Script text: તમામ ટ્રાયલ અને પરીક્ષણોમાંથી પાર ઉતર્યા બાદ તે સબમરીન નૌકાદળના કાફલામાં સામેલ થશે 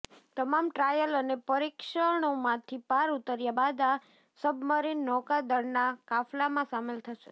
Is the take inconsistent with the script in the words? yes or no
yes